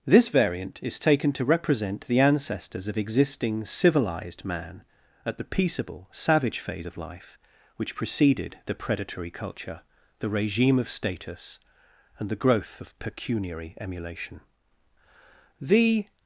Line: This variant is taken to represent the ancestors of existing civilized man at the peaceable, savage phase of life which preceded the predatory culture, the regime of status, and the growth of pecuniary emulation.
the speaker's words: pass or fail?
fail